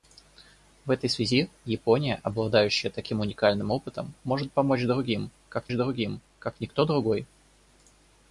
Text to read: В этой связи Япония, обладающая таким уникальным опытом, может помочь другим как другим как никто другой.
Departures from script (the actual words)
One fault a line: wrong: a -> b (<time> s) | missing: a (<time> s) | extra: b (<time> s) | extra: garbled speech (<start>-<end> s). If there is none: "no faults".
no faults